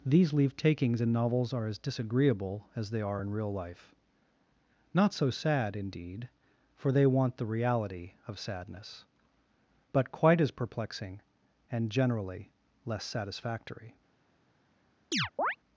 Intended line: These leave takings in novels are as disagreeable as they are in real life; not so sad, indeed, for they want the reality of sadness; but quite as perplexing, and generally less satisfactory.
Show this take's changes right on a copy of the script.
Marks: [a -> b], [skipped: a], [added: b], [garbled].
These leave takings in novels are as disagreeable as they are in real life; not so sad, indeed, for they want the reality of sadness; but quite as perplexing, and generally less satisfactory.